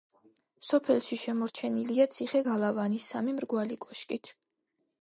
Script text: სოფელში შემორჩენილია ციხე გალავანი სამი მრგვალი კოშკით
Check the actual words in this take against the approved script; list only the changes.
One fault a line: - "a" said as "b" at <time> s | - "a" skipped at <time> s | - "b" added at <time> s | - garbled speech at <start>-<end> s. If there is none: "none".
none